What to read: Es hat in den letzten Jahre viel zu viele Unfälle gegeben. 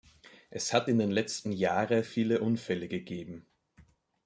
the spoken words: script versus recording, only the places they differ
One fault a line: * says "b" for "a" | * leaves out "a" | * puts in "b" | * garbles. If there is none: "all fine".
* leaves out "viel zu"